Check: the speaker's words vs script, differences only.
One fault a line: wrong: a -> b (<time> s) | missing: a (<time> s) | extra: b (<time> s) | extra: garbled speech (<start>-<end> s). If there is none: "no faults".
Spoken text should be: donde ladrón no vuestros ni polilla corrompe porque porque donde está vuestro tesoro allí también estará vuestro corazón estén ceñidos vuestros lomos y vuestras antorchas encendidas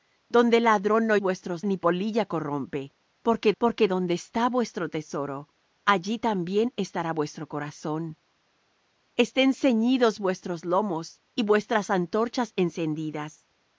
no faults